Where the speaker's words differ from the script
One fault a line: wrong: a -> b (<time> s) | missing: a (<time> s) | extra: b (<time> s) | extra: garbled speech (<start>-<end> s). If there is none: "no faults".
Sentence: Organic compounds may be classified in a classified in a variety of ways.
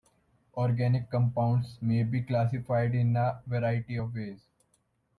missing: classified in a (3.4 s)